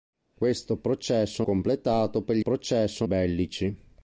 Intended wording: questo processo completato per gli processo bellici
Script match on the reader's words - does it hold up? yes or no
yes